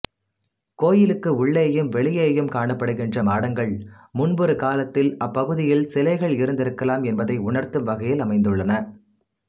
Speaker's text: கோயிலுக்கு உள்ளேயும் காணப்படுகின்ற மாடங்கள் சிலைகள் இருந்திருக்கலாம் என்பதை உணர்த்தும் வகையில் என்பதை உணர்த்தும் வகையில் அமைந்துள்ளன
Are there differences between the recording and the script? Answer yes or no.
yes